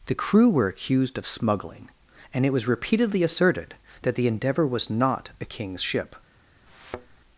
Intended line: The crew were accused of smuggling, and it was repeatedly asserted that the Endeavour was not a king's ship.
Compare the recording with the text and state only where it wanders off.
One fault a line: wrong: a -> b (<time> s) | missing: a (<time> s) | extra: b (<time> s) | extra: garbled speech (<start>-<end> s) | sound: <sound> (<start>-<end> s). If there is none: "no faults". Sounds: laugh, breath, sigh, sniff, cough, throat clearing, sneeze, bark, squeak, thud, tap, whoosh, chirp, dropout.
sound: thud (6.7-7.2 s)